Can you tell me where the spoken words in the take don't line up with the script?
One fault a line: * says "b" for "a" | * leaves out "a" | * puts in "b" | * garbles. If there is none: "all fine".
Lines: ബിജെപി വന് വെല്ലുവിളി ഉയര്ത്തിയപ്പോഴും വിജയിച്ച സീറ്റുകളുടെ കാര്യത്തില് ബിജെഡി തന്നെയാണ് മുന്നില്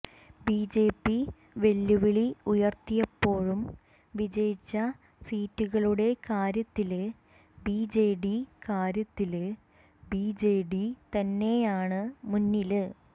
* leaves out "വന്"
* puts in "കാര്യത്തില് ബിജെഡി"